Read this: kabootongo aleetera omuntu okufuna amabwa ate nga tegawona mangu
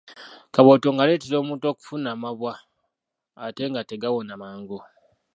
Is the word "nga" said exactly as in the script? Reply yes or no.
yes